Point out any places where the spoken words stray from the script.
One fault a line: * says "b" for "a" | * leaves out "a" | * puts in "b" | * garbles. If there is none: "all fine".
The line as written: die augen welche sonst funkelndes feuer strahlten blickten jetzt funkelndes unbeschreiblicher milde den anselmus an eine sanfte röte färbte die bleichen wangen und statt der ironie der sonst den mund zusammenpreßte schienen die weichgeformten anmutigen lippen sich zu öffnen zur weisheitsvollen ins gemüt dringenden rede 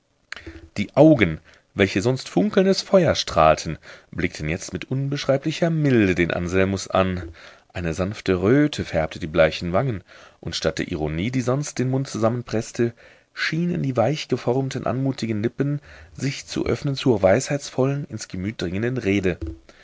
* says "mit" for "funkelndes"
* says "die" for "der"